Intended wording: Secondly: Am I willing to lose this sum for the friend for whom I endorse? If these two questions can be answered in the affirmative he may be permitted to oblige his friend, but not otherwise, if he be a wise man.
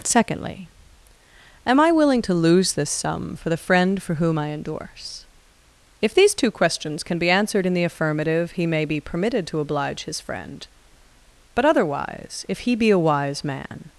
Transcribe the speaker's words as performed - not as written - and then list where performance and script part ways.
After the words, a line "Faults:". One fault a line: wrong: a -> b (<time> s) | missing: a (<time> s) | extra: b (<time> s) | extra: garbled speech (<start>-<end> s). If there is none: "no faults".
Secondly: Am I willing to lose this sum for the friend for whom I endorse? If these two questions can be answered in the affirmative he may be permitted to oblige his friend, but otherwise, if he be a wise man.
Faults:
missing: not (11.7 s)